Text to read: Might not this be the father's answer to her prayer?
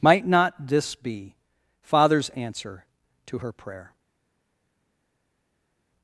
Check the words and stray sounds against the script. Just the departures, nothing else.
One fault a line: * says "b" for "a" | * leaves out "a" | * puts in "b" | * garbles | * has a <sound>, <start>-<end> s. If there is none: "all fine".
* leaves out "the"